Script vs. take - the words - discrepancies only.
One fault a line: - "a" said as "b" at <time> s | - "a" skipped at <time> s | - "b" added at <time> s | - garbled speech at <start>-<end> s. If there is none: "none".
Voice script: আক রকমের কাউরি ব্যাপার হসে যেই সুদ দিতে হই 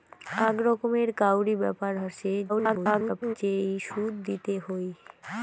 - garbled speech at 2.5-3.4 s